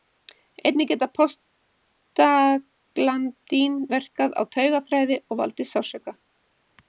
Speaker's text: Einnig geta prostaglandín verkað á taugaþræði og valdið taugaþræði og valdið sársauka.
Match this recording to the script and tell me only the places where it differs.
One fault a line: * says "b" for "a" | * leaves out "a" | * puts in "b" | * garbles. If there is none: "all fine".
* leaves out "taugaþræði og valdið"